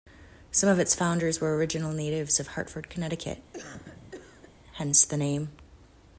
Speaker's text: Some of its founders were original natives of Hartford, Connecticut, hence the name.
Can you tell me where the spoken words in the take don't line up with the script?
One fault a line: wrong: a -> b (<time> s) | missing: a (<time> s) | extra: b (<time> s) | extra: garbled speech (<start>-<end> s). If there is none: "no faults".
no faults